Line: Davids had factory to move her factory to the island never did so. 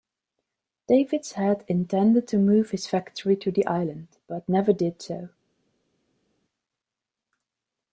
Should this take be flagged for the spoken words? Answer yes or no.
yes